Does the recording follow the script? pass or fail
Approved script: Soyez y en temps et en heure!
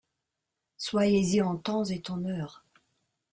pass